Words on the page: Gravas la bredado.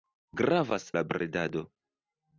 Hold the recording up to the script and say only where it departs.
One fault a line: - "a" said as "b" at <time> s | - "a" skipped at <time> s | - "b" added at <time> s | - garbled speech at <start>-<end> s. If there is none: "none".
none